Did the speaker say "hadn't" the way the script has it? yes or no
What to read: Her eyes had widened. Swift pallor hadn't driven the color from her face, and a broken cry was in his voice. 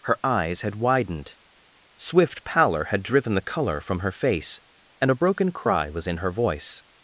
no